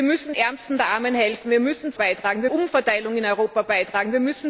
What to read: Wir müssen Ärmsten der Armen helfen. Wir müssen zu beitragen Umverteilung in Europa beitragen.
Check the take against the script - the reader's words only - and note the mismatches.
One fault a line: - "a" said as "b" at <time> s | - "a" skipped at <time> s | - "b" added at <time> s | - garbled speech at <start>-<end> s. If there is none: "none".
none